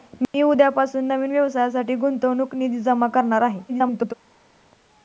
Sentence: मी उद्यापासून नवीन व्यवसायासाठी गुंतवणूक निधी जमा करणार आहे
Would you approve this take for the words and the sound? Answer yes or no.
no